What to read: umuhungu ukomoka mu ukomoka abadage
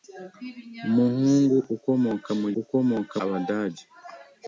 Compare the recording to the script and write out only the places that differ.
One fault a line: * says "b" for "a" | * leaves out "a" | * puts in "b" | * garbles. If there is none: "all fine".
all fine